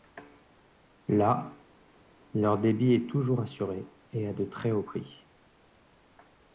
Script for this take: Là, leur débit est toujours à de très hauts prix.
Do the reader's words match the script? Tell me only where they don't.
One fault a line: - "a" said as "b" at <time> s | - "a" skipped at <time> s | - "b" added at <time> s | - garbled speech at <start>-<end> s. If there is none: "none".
- "assuré et" added at 3.4 s